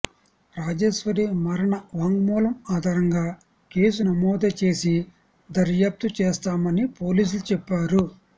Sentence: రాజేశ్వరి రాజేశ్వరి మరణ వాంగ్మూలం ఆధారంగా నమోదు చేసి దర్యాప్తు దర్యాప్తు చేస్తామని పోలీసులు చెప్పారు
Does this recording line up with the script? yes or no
no